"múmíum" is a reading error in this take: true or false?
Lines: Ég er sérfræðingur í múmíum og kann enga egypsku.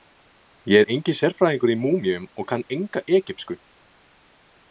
false